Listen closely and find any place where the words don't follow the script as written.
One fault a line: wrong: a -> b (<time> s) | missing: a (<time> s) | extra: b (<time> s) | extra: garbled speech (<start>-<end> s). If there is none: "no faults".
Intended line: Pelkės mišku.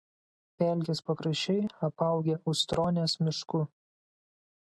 extra: pakraščiai apaugę Ustronės (1.1 s)